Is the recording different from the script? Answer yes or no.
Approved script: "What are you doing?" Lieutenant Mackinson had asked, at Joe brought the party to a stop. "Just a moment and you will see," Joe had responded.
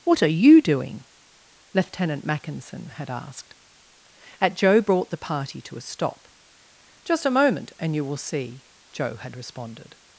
no